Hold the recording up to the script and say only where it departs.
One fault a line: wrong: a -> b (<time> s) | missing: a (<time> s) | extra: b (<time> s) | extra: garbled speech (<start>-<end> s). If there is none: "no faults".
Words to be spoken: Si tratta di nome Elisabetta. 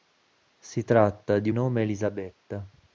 no faults